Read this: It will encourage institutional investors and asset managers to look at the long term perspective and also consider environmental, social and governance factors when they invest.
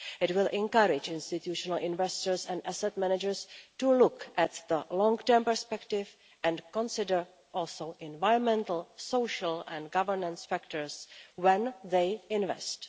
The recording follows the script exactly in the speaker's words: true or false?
true